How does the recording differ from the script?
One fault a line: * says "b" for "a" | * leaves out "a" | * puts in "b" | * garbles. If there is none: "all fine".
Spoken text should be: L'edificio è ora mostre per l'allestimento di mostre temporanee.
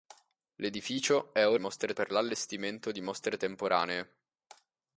all fine